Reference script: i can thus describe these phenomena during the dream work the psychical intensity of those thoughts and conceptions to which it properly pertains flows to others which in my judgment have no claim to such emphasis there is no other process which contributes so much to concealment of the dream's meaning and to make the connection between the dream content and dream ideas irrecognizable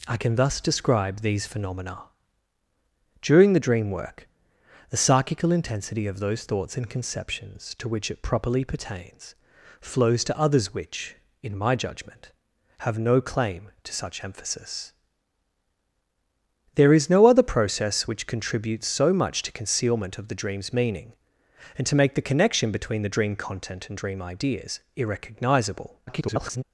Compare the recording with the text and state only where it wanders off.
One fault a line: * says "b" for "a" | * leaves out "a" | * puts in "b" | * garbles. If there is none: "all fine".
* garbles